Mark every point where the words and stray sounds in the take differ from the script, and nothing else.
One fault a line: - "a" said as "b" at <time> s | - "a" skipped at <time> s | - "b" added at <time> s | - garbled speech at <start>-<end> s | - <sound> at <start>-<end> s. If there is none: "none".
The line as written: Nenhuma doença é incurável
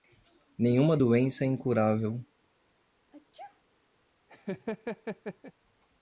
- sneeze at 3.1-3.6 s
- laugh at 4.3-5.5 s